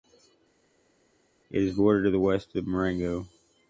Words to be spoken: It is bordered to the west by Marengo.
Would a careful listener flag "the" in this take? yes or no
no